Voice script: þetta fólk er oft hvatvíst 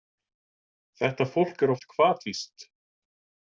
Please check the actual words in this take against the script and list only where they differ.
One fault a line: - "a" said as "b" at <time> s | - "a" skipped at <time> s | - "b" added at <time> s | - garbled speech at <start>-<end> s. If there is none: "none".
none